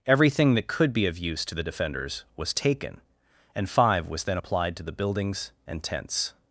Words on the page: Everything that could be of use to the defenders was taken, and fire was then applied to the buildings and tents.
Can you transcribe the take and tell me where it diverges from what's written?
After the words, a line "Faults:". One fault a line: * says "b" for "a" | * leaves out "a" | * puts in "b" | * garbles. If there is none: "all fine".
Everything that could be of use to the defenders was taken, and five was then applied to the buildings and tents.
Faults:
* says "five" for "fire"